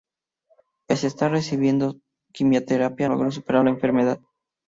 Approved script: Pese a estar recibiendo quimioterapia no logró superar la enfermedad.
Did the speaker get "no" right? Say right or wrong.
wrong